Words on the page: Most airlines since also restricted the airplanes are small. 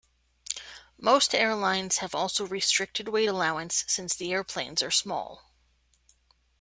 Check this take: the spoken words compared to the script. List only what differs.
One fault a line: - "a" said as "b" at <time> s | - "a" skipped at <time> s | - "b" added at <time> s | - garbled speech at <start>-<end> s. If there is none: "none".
- "since" said as "have" at 2.0 s
- "weight allowance since" added at 3.1 s